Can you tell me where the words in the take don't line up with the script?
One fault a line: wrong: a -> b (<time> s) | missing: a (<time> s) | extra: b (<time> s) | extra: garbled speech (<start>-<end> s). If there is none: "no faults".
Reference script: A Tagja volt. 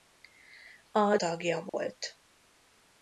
no faults